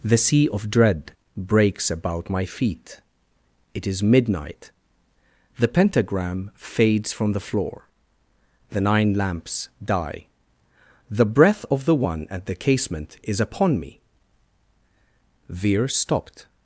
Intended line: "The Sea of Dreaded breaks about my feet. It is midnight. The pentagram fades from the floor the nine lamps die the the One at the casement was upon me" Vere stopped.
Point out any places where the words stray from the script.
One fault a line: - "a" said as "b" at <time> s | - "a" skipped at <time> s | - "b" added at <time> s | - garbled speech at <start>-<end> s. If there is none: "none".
- "Dreaded" said as "Dread" at 0.7 s
- "breath of" added at 11.2 s
- "was" said as "is" at 13.2 s